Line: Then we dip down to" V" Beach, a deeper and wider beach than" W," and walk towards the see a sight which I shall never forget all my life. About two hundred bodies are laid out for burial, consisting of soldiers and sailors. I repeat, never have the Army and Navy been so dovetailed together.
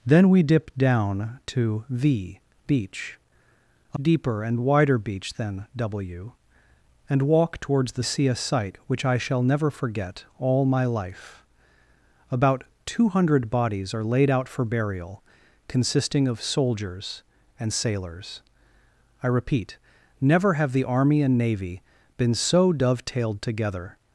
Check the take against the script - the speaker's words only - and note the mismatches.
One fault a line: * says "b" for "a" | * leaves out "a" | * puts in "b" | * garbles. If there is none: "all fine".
all fine